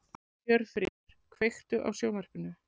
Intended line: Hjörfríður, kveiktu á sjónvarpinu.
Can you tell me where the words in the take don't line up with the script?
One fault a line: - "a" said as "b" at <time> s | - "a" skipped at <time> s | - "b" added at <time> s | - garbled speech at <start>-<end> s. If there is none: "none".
none